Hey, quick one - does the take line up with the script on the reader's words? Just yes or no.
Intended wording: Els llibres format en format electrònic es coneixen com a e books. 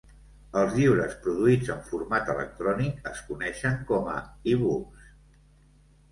no